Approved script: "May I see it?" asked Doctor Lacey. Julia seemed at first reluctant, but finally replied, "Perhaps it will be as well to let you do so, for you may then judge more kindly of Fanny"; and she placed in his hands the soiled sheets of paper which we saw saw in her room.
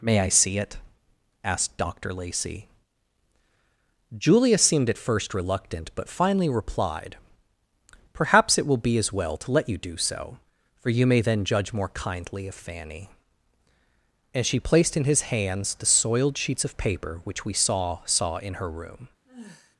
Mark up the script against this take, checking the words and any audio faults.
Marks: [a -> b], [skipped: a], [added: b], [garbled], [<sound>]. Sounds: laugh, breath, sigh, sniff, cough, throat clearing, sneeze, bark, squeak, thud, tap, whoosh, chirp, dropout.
"May I see it?" asked Doctor Lacey. Julia seemed at first reluctant, but finally replied, "Perhaps it will be as well to let you do so, for you may then judge more kindly of Fanny"; and she placed in his hands the soiled sheets of paper which we saw saw in her room. [sigh]